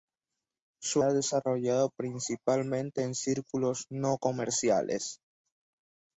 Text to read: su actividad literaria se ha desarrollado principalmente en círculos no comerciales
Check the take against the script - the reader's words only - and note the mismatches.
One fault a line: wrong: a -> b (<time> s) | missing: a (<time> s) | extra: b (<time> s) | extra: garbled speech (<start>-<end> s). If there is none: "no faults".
missing: actividad literaria se (1.0 s)